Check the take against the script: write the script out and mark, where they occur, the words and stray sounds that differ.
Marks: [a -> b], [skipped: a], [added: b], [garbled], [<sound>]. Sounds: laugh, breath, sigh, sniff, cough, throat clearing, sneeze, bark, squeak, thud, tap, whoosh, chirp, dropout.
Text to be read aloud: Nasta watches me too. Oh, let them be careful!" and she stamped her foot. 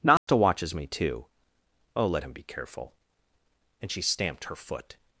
Nasta [dropout] watches me too. Oh, let [them -> him] be careful!" and she stamped her foot.